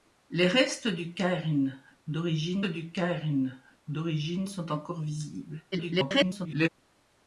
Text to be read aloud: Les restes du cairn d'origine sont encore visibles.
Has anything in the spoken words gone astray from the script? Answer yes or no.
yes